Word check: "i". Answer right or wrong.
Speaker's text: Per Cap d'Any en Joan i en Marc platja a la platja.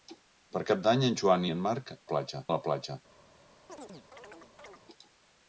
right